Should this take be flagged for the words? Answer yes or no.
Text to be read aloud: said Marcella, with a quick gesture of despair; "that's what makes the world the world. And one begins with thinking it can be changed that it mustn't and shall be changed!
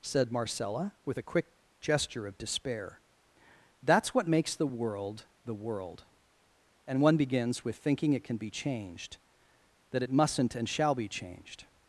no